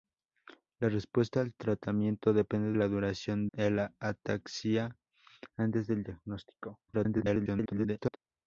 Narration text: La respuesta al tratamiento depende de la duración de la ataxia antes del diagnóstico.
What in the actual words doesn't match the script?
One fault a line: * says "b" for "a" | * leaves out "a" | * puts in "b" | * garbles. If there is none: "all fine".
* leaves out "de"
* leaves out "de"
* garbles